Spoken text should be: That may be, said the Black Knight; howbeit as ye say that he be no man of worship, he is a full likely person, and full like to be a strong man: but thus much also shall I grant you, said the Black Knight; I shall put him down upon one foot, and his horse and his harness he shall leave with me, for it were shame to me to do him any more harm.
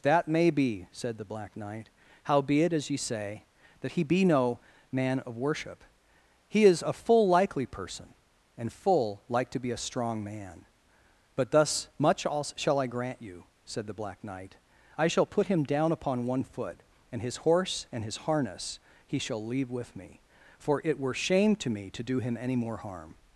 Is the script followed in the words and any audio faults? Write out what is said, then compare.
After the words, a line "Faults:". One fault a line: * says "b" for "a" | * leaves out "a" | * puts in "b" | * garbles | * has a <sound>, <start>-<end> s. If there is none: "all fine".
That may be, said the Black Knight; howbeit as ye say that he be no man of worship, he is a full likely person, and full like to be a strong man: but thus much also shall I grant you, said the Black Knight; I shall put him down upon one foot, and his horse and his harness he shall leave with me, for it were shame to me to do him any more harm.
Faults:
all fine